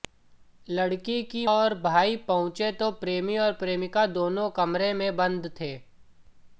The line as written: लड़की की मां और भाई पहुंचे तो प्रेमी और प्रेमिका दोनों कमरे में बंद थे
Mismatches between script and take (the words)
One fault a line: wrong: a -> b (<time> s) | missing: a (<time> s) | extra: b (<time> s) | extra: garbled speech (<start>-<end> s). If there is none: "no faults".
missing: मां (1.4 s)